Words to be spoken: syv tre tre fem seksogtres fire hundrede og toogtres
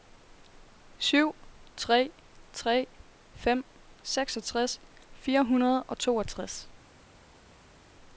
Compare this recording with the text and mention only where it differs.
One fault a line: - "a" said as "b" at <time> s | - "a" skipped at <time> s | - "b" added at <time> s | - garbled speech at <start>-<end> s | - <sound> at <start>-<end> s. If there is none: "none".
none